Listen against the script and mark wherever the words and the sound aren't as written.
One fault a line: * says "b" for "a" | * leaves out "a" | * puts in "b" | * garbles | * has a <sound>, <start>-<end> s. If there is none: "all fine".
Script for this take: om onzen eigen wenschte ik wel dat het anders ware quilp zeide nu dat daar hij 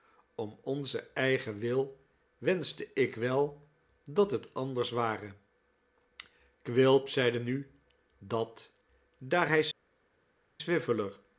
* puts in "wil"